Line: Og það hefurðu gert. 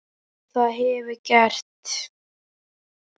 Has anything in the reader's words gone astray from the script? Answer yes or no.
no